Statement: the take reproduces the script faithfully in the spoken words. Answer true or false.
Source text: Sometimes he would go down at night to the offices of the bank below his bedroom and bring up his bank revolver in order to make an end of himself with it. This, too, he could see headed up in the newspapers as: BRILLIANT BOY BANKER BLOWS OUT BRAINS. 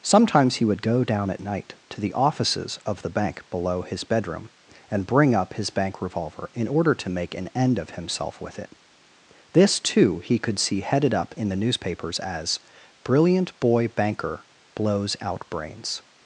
true